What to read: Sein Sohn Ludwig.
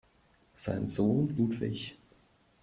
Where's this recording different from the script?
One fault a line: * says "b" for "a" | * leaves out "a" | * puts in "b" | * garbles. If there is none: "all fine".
all fine